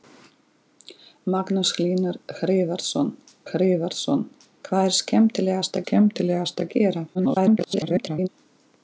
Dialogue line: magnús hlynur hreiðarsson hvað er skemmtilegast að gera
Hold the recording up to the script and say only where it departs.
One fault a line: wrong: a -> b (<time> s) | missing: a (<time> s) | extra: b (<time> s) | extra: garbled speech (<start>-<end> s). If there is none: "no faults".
extra: hreiðarsson (3.5 s)
extra: skemmtilegast (5.8 s)
extra: garbled speech (7.1-8.3 s)